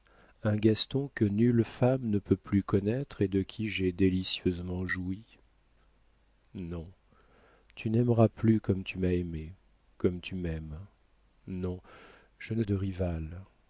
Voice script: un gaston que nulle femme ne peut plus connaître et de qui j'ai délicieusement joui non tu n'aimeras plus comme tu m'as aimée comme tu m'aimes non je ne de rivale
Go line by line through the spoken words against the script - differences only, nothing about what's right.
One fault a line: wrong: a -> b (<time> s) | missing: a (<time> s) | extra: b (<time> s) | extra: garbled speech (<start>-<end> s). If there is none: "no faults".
no faults